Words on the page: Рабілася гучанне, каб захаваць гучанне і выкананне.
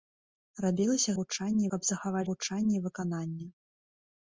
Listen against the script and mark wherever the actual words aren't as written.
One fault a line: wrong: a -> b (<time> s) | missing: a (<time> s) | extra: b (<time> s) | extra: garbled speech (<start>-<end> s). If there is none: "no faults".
no faults